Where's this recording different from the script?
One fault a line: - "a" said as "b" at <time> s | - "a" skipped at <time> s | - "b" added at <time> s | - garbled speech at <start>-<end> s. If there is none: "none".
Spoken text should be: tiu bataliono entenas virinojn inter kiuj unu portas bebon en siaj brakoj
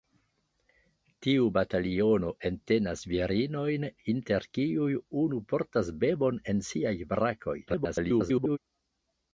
- garbled speech at 7.7-8.6 s